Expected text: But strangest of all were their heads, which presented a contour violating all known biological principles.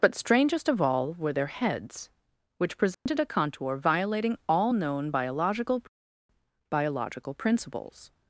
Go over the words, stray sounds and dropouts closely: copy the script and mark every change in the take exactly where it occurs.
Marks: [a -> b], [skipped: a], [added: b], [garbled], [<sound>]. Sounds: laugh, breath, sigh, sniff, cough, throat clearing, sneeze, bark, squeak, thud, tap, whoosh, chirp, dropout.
But strangest of all were their heads, which presented [dropout] a contour violating all known biological [added: biological] principles.